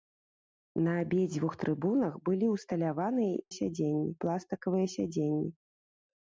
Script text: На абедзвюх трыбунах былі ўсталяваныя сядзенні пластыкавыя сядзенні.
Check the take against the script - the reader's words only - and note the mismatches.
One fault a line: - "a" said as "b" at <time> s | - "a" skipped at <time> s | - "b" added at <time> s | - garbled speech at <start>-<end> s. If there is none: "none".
none